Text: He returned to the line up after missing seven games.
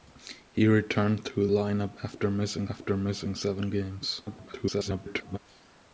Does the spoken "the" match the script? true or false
false